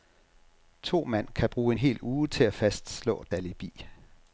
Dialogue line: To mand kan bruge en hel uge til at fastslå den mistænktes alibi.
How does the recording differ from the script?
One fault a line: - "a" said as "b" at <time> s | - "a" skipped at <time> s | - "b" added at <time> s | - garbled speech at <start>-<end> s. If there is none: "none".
- "den mistænktes" skipped at 3.3 s